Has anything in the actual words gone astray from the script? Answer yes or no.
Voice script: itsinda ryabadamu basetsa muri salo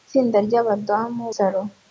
yes